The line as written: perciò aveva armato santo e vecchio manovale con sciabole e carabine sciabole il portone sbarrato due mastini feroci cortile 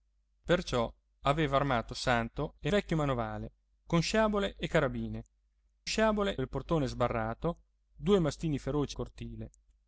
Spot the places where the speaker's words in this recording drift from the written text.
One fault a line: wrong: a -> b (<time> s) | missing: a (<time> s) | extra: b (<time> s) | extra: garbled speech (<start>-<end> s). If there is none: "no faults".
no faults